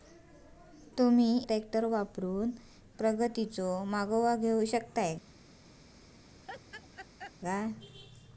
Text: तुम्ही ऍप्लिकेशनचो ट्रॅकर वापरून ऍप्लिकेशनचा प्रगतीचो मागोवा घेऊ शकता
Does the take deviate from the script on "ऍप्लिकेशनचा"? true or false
true